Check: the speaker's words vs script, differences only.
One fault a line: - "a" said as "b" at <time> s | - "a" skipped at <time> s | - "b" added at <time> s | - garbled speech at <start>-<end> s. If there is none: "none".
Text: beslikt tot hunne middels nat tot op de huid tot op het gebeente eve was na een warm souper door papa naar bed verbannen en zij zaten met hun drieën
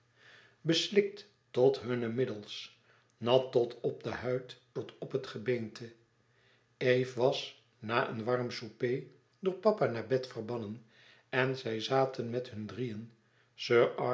none